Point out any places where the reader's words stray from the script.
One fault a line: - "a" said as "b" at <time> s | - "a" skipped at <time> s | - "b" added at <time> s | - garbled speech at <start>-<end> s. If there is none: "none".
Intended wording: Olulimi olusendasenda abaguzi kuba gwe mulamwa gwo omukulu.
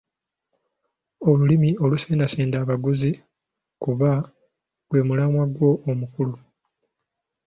none